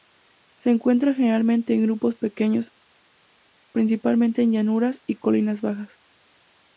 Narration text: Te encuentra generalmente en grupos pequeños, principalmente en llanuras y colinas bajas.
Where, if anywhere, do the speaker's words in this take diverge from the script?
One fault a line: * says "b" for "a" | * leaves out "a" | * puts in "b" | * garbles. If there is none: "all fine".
* says "Se" for "Te"